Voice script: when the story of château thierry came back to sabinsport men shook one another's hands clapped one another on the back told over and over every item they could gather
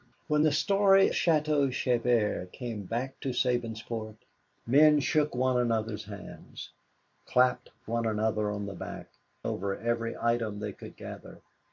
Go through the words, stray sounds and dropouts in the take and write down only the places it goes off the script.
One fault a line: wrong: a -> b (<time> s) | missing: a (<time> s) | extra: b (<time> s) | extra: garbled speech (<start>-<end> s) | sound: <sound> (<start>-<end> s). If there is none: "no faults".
missing: of (1.1 s)
missing: told over and (9.1 s)